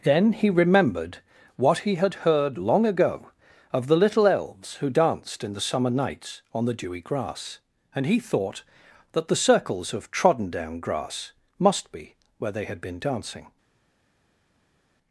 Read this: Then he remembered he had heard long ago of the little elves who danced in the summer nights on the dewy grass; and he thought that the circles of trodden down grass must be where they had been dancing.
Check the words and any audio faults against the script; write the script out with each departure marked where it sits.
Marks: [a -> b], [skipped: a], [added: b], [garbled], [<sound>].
Then he remembered [added: what] he had heard long ago of the little elves who danced in the summer nights on the dewy grass; and he thought that the circles of trodden down grass must be where they had been dancing.